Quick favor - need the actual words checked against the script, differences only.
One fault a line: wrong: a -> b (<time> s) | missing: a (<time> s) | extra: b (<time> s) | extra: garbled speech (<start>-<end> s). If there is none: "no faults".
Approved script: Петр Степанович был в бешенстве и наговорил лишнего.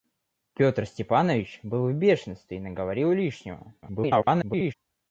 extra: garbled speech (3.8-4.7 s)